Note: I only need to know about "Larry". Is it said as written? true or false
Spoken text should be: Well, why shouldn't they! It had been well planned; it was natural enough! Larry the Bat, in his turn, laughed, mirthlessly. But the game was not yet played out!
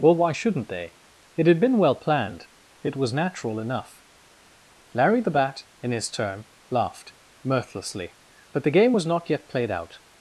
true